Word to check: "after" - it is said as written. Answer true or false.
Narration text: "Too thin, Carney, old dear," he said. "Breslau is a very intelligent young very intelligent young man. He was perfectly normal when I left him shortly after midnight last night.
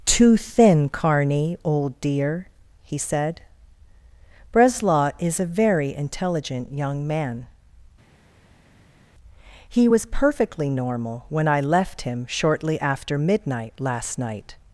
true